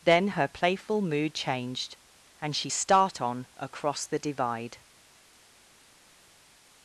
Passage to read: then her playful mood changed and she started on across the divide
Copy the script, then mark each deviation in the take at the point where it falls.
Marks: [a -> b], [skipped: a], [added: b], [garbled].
then her playful mood changed and she [started -> start] on across the divide